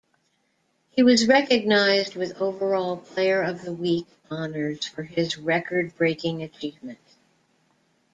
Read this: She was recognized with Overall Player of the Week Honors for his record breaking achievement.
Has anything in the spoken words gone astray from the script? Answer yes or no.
yes